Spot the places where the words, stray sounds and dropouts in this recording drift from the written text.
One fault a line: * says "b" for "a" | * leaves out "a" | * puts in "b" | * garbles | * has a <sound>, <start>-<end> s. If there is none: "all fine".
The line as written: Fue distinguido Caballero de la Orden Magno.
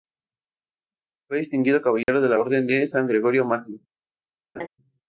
* has a dropout, 2.0-2.1 s
* puts in "de San Gregorio"
* has a laugh, 4.6-4.7 s